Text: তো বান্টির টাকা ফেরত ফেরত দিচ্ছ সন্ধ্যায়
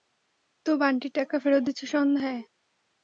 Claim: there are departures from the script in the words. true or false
true